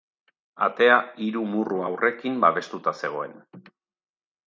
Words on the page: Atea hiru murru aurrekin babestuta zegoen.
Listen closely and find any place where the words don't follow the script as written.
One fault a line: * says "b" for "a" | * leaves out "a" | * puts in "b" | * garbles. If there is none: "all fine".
all fine